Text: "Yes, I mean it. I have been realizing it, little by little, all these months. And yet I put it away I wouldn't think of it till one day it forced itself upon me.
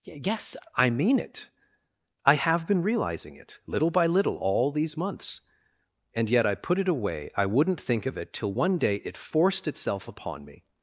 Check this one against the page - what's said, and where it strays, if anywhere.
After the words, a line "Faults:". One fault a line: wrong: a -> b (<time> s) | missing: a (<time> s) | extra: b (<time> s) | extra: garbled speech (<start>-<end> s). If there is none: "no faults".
"Yes, I mean it. I have been realizing it, little by little, all these months. And yet I put it away I wouldn't think of it till one day it forced itself upon me.
Faults:
no faults